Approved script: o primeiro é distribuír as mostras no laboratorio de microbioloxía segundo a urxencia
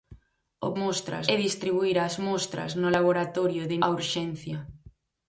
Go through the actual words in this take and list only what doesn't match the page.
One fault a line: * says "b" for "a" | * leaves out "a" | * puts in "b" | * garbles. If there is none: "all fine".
* says "mostras" for "primeiro"
* leaves out "microbioloxía segundo"